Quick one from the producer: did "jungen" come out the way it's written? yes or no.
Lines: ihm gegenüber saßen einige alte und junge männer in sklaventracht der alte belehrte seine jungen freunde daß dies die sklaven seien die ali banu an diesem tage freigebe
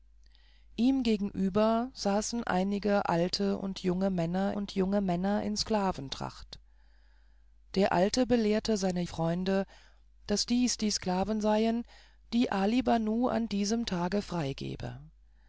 no